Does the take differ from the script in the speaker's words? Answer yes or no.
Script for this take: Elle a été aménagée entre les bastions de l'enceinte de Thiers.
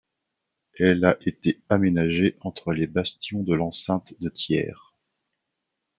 no